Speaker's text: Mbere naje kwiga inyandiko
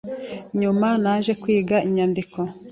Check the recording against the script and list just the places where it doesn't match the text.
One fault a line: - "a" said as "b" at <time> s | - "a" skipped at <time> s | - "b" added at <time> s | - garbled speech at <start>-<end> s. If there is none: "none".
- "Mbere" said as "Nyuma" at 0.6 s